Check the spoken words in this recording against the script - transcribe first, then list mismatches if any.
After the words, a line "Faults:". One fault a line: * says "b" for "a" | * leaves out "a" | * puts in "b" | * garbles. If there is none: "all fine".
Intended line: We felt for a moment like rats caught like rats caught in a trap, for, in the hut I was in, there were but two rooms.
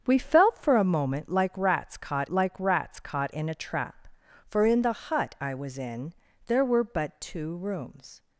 We felt for a moment like rats caught like rats caught in a trap, for, in the hut I was in, there were but two rooms.
Faults:
all fine